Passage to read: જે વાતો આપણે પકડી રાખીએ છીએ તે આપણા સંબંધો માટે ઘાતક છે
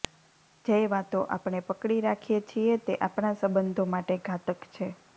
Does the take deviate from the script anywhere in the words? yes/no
no